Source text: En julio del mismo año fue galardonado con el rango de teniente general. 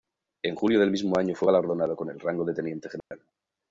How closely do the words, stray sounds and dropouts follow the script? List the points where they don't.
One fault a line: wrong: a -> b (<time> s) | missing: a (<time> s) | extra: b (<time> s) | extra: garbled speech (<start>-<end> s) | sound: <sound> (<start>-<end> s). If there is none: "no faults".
sound: dropout (3.0-3.1 s)